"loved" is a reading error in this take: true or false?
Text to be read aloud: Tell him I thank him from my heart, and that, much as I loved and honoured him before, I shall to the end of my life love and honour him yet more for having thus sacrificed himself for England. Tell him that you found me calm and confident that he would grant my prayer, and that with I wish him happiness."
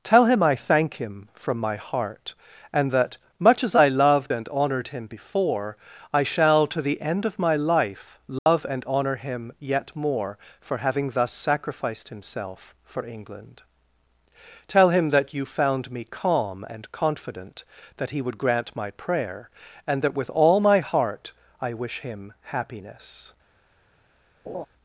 false